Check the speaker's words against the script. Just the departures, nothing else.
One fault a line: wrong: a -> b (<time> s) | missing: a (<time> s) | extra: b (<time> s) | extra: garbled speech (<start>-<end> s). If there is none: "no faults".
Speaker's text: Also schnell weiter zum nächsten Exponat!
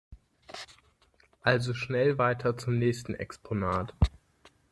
no faults